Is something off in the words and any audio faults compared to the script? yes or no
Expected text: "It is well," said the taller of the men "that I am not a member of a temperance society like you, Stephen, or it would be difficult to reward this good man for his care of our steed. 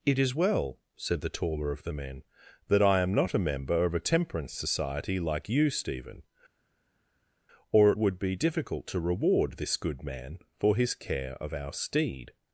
no